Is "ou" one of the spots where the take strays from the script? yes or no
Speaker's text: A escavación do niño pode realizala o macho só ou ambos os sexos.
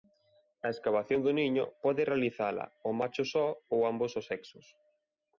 no